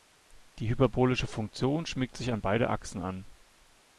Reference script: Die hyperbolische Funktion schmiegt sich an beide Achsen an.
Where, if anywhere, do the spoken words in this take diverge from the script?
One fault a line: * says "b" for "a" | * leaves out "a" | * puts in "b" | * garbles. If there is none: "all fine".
all fine